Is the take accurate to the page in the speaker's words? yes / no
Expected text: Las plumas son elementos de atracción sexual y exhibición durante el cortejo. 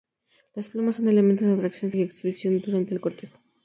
no